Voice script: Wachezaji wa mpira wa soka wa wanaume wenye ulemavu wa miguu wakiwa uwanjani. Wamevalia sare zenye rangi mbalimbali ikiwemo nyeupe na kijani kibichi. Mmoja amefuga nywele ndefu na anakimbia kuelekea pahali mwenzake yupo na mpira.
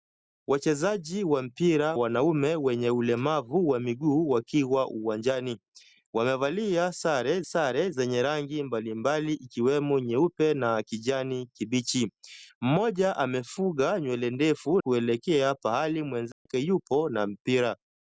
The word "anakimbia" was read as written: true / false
false